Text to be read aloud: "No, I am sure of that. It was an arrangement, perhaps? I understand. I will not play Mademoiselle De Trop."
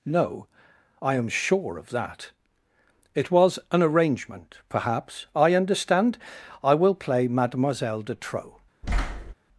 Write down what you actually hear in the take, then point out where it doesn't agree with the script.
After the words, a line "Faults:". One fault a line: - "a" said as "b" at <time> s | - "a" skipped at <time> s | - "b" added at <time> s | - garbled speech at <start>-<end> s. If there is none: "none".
"No, I am sure of that. It was an arrangement, perhaps? I understand. I will play Mademoiselle De Trop."
Faults:
- "not" skipped at 6.9 s